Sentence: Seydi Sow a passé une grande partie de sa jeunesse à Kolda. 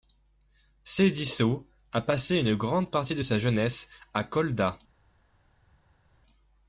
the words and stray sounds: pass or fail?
pass